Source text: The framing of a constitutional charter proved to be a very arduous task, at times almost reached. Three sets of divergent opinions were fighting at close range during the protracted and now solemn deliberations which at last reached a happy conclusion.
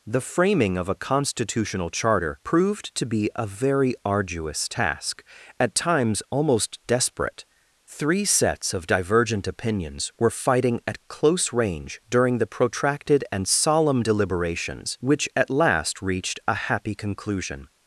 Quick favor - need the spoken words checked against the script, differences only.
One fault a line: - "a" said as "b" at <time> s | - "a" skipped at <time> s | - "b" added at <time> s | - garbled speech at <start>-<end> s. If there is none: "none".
- "reached" said as "desperate" at 6.9 s
- "now" skipped at 13.5 s